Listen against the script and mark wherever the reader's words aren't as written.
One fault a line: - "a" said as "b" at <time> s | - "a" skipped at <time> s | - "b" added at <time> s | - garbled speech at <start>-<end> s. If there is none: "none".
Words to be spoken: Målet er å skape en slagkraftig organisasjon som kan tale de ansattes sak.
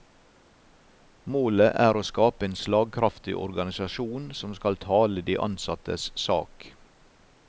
- "kan" said as "skal" at 4.6 s